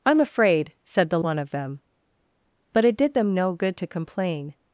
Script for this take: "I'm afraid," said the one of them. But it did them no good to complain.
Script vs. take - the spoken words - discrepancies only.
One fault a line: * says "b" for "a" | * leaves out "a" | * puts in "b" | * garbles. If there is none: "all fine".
all fine